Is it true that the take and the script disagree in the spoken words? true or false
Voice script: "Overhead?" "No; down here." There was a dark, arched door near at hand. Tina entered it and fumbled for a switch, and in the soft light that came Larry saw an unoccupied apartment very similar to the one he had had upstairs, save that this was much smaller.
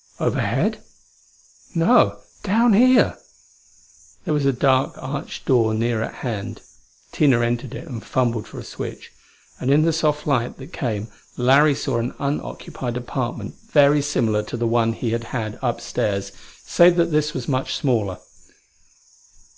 false